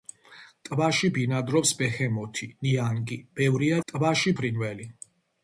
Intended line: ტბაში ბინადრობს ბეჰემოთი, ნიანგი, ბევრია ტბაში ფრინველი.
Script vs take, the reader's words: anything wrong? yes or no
no